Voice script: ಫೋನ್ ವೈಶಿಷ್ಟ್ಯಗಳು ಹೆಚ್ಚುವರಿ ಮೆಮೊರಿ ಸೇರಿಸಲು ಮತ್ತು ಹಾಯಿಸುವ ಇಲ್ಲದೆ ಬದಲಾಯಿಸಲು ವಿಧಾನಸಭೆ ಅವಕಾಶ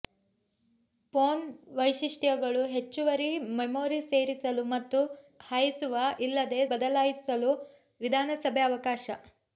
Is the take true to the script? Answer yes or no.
yes